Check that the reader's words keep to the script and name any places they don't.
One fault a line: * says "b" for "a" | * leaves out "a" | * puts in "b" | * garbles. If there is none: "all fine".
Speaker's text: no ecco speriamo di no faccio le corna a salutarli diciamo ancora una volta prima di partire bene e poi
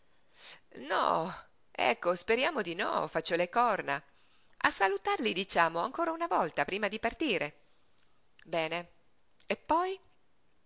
all fine